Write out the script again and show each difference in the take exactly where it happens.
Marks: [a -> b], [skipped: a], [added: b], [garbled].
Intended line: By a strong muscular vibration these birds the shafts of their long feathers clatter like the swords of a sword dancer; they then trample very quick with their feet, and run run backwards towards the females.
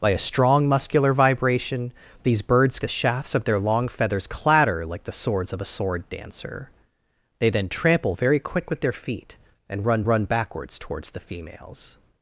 By a strong muscular vibration these birds the shafts of their long feathers clatter like the swords of a sword dancer; they then trample very quick with their feet, and run run backwards towards the females.